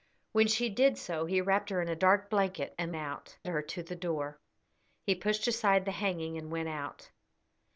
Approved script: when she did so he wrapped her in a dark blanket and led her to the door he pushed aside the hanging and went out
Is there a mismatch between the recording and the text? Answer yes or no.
yes